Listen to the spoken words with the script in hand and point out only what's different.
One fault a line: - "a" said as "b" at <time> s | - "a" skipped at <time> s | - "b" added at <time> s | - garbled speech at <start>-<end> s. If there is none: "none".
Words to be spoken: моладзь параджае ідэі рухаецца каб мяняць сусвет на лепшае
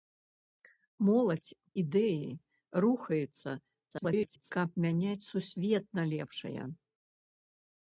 - "параджае" skipped at 1.5 s
- garbled speech at 3.9-4.5 s